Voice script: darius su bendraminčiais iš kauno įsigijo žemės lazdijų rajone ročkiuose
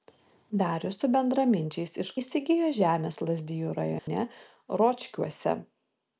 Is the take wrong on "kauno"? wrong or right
wrong